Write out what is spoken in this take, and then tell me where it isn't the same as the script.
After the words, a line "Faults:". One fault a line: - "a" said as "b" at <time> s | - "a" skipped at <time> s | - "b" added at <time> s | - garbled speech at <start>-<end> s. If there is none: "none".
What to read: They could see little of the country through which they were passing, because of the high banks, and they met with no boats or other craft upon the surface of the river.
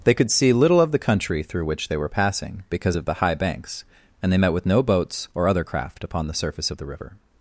They could see little of the country through which they were passing, because of the high banks, and they met with no boats or other craft upon the surface of the river.
Faults:
none